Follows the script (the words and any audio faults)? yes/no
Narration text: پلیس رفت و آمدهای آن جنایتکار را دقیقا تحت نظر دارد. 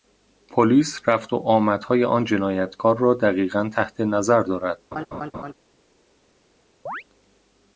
no